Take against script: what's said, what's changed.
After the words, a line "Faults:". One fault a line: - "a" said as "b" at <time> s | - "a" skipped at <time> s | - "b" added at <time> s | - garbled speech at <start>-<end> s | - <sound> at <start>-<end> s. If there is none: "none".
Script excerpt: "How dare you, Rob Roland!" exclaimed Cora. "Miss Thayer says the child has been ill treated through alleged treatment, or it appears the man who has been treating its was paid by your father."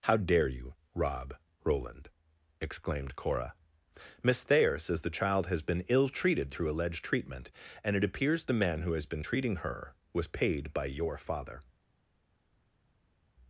"How dare you, Rob Roland!" exclaimed Cora. "Miss Thayer says the child has been ill treated through alleged treatment, and it appears the man who has been treating her was paid by your father."
Faults:
- "or" said as "and" at 7.8 s
- "its" said as "her" at 9.6 s